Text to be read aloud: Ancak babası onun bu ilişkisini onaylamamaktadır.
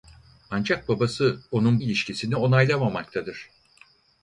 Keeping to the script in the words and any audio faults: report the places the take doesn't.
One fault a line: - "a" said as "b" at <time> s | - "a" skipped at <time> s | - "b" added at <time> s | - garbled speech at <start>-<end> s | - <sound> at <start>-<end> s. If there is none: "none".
- "bu" skipped at 1.8 s